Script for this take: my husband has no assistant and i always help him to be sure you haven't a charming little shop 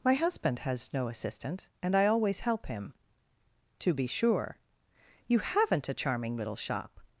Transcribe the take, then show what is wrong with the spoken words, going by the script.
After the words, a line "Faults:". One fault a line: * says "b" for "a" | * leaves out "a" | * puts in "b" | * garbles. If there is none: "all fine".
my husband has no assistant and i always help him to be sure you haven't a charming little shop
Faults:
all fine